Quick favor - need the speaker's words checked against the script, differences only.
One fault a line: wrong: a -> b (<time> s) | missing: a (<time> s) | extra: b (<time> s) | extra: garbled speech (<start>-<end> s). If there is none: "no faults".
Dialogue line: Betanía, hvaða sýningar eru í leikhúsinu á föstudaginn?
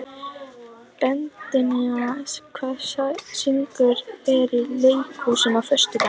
no faults